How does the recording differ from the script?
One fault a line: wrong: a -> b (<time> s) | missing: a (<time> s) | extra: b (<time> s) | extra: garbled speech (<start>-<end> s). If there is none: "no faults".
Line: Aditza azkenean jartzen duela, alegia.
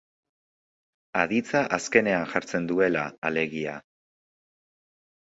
no faults